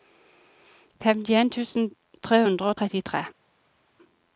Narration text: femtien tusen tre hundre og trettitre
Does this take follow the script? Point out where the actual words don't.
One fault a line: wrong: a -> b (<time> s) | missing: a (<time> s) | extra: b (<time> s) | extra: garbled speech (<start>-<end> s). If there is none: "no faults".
no faults